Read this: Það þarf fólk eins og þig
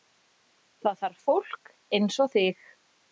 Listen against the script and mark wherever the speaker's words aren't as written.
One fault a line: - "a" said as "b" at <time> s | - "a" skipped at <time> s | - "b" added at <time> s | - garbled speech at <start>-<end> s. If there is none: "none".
none